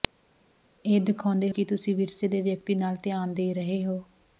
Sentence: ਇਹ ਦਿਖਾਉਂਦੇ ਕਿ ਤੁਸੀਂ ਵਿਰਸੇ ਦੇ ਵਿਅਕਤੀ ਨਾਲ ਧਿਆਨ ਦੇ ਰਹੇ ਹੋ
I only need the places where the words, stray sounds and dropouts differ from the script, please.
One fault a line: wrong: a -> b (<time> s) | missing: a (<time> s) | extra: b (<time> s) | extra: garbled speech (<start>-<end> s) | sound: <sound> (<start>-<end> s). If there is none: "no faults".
no faults